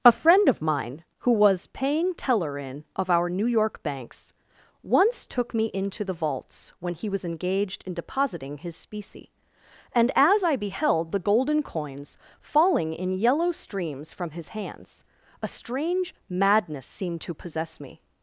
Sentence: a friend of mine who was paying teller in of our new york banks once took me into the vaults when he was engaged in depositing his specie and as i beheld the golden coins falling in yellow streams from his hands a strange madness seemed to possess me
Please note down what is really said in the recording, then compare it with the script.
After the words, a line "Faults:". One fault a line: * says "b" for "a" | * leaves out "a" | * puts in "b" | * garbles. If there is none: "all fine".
a friend of mine who was paying teller in of our new york banks once took me into the vaults when he was engaged in depositing his specie and as i beheld the golden coins falling in yellow streams from his hands a strange madness seemed to possess me
Faults:
all fine